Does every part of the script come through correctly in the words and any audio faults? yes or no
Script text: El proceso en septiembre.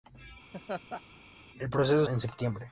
no